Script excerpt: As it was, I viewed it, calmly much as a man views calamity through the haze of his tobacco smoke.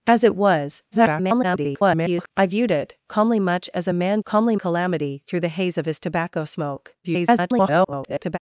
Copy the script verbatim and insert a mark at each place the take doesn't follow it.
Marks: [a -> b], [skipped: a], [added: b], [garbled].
As it was, [garbled] I viewed it, calmly much as a man [views -> calmly] calamity through the haze of his tobacco smoke. [garbled]